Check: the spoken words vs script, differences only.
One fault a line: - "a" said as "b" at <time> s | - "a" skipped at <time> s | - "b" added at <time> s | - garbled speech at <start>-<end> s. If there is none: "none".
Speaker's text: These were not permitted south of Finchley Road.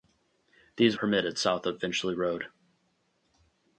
- "were not" skipped at 1.0 s